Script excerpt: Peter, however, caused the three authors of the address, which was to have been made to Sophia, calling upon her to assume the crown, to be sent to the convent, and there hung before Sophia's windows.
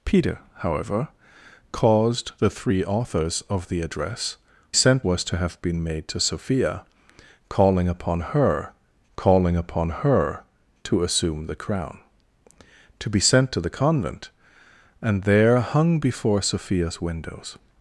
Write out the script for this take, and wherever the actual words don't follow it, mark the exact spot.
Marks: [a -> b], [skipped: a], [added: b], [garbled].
Peter, however, caused the three authors of the address, [which -> sent] was to have been made to Sophia, calling upon her [added: calling upon her] to assume the crown, to be sent to the convent, and there hung before Sophia's windows.